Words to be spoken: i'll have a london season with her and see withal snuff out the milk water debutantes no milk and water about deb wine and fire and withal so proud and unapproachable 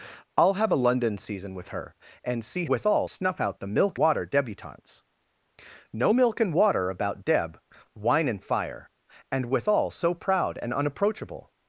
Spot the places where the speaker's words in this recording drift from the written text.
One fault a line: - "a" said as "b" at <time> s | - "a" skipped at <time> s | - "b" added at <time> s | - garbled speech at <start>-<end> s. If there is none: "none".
none